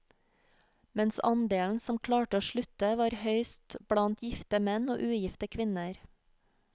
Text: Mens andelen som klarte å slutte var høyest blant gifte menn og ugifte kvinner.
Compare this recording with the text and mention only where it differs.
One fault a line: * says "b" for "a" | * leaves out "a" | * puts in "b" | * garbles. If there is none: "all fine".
all fine